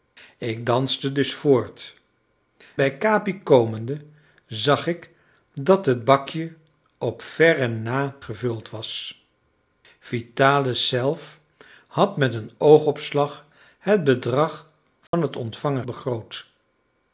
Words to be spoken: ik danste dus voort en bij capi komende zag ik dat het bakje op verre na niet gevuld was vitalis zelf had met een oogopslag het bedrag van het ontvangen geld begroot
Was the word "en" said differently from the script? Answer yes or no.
yes